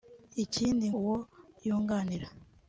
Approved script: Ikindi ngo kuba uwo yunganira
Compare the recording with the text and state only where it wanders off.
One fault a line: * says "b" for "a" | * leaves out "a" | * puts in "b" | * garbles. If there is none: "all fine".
* leaves out "ngo kuba"